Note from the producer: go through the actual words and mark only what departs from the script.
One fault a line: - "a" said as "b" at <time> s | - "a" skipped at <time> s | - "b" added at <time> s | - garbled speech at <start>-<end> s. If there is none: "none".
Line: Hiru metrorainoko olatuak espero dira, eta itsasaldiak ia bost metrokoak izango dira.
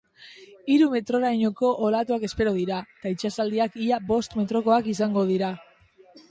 none